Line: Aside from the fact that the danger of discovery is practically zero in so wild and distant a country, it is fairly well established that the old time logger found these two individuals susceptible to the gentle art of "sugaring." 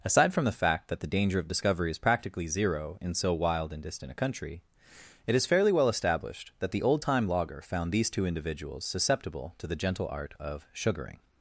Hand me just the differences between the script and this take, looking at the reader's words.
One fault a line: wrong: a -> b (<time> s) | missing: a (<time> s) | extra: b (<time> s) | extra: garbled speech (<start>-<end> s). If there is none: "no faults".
no faults